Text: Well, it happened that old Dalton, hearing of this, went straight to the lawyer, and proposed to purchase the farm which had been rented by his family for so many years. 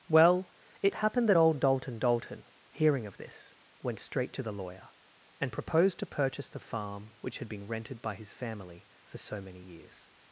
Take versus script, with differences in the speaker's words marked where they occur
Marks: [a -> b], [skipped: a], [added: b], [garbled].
Well, it happened that old Dalton, [added: Dalton] hearing of this, went straight to the lawyer, and proposed to purchase the farm which had been rented by his family for so many years.